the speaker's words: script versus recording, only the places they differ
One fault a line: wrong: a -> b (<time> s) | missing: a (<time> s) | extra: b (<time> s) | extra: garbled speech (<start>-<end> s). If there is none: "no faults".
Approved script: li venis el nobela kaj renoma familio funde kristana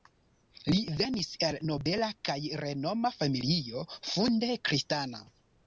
no faults